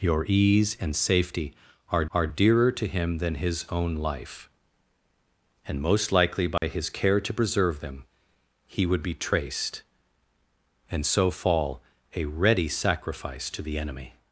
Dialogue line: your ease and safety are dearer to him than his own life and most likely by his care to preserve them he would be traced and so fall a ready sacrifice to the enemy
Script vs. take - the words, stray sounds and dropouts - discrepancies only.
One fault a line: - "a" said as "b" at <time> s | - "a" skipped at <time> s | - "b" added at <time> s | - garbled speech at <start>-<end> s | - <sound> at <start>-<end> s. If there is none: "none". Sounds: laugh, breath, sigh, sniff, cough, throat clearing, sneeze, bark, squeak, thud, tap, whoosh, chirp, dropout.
- "are" added at 2.1 s
- dropout at 6.6-6.6 s